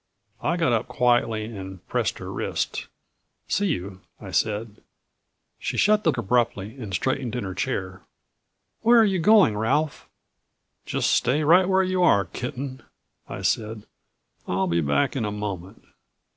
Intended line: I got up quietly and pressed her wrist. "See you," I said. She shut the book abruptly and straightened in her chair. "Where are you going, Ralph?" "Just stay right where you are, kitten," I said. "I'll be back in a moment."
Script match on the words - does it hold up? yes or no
no